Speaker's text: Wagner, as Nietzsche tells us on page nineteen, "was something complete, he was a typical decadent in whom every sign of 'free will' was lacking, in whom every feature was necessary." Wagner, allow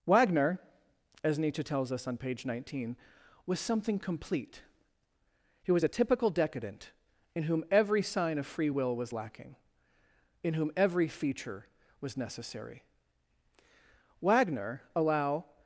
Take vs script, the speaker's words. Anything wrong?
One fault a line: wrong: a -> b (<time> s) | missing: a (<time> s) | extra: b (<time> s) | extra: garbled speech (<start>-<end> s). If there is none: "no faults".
no faults